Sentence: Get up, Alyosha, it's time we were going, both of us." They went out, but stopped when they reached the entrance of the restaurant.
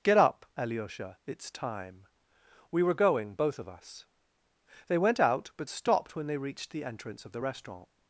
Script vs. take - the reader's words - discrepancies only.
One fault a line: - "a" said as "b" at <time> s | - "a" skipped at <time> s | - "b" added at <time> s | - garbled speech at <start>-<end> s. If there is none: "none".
none